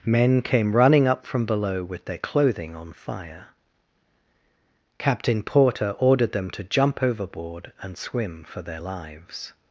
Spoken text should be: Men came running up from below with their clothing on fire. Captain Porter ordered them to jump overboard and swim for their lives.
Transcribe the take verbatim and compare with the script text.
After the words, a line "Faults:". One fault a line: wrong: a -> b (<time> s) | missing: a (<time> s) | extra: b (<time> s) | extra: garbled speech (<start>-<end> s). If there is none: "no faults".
Men came running up from below with their clothing on fire. Captain Porter ordered them to jump overboard and swim for their lives.
Faults:
no faults